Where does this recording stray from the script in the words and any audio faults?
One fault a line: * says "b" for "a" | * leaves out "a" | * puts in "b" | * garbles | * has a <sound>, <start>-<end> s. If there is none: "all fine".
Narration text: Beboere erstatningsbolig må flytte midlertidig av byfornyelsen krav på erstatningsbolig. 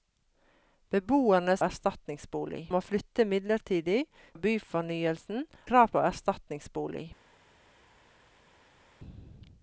all fine